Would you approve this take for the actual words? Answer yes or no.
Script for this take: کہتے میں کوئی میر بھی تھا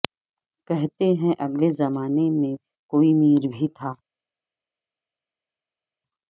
no